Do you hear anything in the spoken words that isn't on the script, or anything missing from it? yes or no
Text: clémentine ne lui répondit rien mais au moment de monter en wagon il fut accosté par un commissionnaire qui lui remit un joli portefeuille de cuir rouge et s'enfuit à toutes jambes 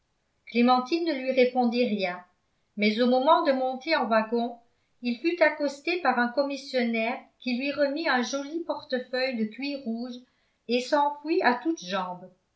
no